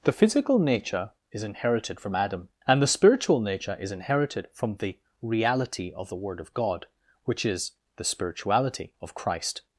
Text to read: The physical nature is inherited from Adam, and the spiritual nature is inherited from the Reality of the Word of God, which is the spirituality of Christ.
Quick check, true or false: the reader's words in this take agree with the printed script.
true